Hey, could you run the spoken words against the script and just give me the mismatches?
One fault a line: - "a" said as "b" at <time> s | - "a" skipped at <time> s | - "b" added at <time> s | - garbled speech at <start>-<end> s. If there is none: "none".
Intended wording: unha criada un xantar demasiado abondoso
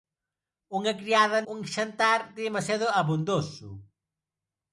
none